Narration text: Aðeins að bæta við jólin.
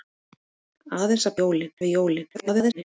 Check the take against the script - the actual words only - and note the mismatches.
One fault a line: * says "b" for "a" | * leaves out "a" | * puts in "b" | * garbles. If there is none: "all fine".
* says "jólin" for "bæta"
* garbles